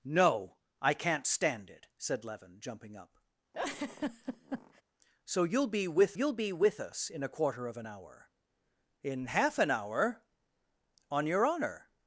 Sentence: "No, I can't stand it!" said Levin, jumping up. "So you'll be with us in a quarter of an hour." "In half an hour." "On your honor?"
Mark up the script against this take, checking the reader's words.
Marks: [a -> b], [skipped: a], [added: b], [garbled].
"No, I can't stand it!" said Levin, jumping up. "So you'll be with [added: you'll be with] us in a quarter of an hour." "In half an hour." "On your honor?"